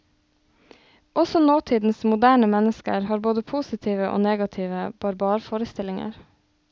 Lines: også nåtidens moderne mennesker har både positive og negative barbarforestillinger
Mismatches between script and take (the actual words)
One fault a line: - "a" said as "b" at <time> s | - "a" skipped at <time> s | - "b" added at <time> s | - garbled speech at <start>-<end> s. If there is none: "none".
none